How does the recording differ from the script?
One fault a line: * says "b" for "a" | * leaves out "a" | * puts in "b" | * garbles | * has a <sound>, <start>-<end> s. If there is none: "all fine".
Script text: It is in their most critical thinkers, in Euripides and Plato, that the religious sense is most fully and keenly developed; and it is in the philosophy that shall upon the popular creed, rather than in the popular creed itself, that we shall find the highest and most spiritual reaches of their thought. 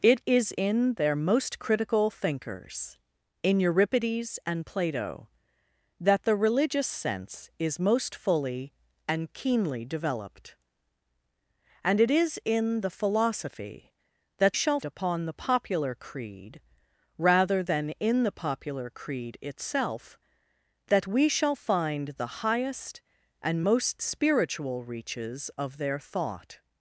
all fine